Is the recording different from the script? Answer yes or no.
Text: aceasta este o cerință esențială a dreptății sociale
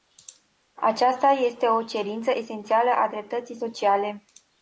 no